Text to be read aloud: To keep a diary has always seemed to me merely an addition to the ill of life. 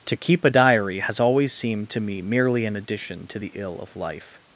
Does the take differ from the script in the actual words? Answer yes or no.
no